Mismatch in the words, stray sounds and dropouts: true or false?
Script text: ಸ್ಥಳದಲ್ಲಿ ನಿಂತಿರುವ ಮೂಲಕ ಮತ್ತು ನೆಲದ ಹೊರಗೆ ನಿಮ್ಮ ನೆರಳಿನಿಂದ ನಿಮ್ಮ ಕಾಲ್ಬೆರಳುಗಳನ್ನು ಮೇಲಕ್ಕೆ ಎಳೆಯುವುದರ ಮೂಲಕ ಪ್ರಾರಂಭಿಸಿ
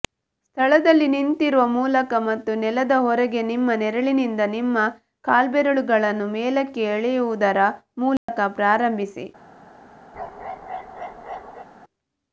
true